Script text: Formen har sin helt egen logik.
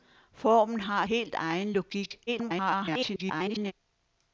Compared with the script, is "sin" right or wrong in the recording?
wrong